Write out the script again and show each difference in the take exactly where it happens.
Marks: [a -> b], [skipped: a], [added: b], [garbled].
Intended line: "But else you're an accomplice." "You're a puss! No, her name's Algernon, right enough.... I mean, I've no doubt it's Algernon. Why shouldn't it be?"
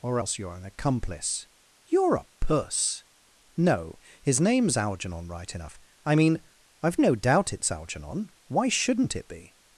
["But -> Or] else you're an accomplice." "You're a puss! No, [her -> his] name's Algernon, right enough.... I mean, I've no doubt it's Algernon. Why shouldn't it be?"